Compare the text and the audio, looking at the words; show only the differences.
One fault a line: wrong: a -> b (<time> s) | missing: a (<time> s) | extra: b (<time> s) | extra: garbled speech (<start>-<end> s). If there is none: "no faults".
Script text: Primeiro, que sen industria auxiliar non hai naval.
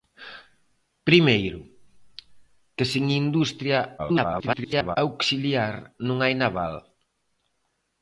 extra: garbled speech (4.0-5.0 s)